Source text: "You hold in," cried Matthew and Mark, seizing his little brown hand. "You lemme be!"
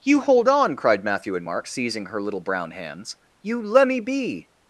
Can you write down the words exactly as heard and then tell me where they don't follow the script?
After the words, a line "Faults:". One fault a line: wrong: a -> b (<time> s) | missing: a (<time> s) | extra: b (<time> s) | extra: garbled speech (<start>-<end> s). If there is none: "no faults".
"You hold on," cried Matthew and Mark, seizing her little brown hands. "You lemme be!"
Faults:
wrong: in -> on (0.5 s)
wrong: his -> her (2.1 s)
wrong: hand -> hands (2.7 s)